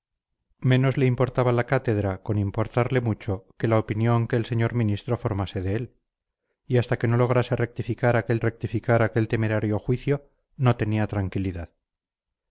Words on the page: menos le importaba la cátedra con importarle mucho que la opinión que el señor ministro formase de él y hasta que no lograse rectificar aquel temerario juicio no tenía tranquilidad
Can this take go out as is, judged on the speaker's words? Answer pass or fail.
fail